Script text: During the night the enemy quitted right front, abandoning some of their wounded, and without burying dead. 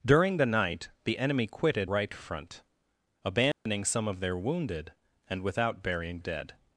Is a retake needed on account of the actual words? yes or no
no